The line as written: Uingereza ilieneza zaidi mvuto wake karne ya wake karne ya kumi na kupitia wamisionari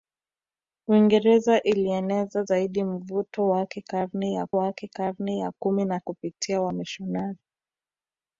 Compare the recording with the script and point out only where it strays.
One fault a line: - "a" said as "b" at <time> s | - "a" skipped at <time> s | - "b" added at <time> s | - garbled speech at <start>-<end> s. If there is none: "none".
none